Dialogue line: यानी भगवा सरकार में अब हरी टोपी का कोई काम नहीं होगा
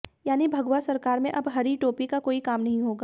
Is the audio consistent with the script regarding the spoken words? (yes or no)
yes